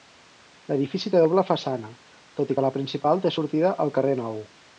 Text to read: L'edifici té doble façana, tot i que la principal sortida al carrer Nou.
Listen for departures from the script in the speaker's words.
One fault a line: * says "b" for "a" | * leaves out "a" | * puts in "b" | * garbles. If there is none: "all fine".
* puts in "té"